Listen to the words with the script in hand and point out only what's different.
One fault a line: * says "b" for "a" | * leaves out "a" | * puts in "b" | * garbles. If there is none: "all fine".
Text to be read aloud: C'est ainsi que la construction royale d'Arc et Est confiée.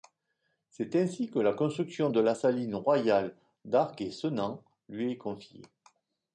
* puts in "de la saline"
* puts in "Senans lui"